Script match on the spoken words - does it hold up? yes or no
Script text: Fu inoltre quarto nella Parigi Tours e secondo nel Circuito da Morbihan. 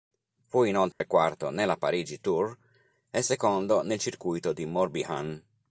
no